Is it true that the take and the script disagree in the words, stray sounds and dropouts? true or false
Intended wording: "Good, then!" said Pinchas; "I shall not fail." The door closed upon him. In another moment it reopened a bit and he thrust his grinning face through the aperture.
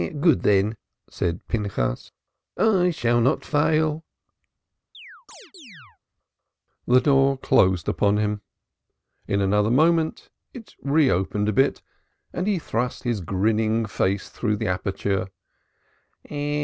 true